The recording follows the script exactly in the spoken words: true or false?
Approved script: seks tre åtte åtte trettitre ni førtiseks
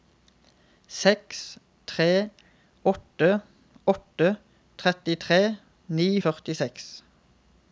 true